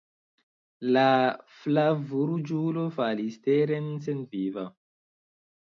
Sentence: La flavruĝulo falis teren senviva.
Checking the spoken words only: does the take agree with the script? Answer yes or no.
yes